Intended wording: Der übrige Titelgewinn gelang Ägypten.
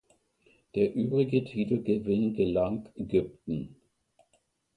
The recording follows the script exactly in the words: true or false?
true